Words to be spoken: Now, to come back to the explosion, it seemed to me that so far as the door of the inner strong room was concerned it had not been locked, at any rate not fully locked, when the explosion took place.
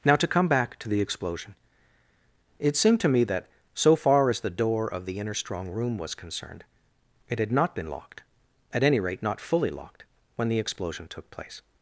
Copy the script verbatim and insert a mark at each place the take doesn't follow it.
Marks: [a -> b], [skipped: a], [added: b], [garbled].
Now, to come back to the explosion, it seemed to me that so far as the door of the inner strong room was concerned it had not been locked, at any rate not fully locked, when the explosion took place.